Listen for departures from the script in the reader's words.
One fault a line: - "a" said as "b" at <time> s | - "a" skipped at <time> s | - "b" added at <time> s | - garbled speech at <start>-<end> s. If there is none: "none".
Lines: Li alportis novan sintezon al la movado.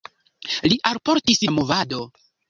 - "novan sintezon al" skipped at 1.4 s